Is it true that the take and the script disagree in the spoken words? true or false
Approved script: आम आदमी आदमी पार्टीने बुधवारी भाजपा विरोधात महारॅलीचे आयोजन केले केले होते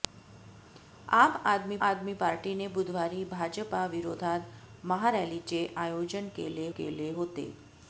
false